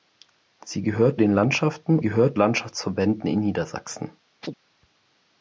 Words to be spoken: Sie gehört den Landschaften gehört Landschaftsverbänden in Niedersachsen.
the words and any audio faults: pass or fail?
fail